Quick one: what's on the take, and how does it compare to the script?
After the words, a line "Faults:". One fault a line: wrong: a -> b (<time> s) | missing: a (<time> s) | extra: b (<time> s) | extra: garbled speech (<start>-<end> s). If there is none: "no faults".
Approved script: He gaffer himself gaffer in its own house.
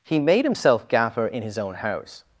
He made himself gaffer in his own house.
Faults:
wrong: gaffer -> made (0.2 s)
wrong: its -> his (1.4 s)